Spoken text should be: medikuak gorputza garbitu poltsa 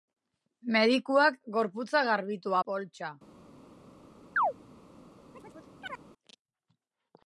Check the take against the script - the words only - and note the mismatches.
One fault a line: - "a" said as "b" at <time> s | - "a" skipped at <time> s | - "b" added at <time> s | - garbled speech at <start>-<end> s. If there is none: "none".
none